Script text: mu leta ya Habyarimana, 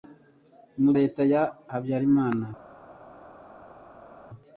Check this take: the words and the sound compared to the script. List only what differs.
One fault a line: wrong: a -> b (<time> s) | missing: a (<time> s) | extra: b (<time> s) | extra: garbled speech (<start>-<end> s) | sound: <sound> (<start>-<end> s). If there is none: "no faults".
no faults